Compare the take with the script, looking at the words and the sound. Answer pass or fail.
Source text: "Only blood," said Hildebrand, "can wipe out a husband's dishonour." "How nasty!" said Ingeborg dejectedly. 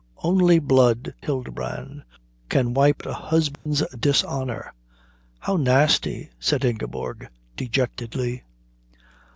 fail